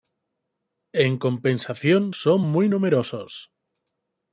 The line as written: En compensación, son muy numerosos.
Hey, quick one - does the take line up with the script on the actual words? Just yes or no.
yes